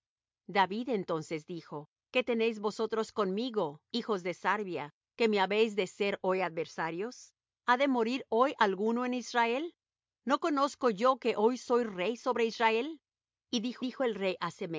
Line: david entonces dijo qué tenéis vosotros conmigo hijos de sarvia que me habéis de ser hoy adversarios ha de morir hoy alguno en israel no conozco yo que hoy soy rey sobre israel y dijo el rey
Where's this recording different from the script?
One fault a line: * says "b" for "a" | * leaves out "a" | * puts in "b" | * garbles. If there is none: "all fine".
* puts in "dijo"